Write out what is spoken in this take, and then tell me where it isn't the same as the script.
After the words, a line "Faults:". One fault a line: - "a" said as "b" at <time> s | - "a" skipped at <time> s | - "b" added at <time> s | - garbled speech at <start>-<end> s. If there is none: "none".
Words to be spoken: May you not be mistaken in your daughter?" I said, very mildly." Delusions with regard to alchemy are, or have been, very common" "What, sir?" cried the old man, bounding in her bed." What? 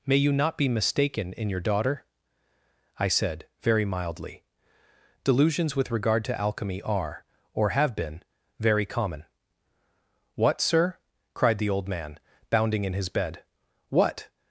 May you not be mistaken in your daughter?" I said, very mildly." Delusions with regard to alchemy are, or have been, very common" "What, sir?" cried the old man, bounding in his bed." What?
Faults:
- "her" said as "his" at 12.9 s